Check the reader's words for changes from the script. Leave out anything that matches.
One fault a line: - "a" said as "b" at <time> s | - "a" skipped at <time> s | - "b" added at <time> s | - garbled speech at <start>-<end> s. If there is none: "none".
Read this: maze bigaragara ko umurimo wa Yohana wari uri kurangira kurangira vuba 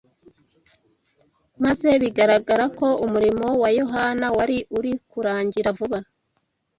- "kurangira" skipped at 5.7 s